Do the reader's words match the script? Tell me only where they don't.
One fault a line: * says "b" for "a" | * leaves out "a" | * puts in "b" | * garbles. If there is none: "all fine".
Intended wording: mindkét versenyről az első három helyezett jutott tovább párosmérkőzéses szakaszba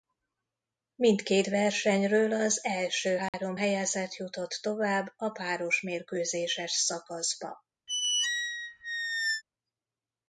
* puts in "a"